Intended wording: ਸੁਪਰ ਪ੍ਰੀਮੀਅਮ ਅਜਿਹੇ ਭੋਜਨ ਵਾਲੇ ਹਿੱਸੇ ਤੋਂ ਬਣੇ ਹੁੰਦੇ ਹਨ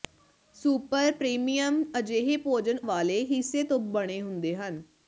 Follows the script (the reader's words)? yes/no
yes